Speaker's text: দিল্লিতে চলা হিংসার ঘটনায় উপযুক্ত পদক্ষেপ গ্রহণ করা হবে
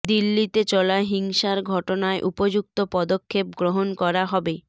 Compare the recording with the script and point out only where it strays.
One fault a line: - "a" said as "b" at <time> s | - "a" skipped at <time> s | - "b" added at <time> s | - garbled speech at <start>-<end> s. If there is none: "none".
none